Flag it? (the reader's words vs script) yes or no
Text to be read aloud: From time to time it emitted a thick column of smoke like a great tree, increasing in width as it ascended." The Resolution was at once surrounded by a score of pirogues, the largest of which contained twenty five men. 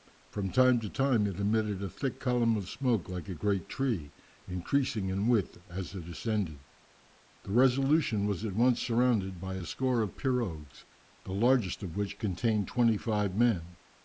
no